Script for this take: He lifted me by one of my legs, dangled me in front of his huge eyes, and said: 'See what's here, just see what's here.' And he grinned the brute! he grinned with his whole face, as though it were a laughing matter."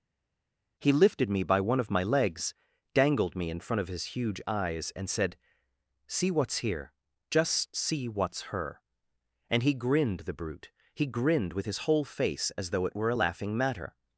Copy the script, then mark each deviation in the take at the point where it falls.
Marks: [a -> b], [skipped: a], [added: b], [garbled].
He lifted me by one of my legs, dangled me in front of his huge eyes, and said: 'See what's here, just see what's [here.' -> her] And he grinned the brute! he grinned with his whole face, as though it were a laughing matter."